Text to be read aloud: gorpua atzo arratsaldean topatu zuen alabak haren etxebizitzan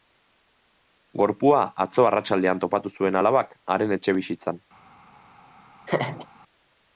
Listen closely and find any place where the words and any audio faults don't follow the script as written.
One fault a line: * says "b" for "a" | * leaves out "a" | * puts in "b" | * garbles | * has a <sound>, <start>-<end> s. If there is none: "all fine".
* has a laugh, 5.9-6.3 s